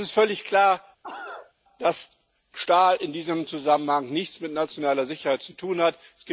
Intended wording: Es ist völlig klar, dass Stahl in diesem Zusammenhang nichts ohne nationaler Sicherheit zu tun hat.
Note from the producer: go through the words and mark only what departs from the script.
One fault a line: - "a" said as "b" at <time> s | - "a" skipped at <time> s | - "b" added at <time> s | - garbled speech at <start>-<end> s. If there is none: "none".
- "ohne" said as "mit" at 4.4 s